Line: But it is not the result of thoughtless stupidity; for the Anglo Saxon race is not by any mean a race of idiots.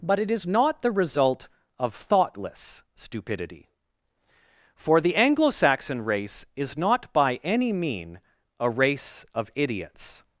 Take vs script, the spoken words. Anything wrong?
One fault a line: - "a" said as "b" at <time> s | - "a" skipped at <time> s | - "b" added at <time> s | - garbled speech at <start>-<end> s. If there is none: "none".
none